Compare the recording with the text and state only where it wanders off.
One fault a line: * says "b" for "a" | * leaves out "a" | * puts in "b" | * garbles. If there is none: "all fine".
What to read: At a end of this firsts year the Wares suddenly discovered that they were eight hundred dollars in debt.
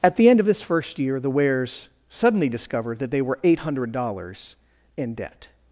* says "the" for "a"
* says "first" for "firsts"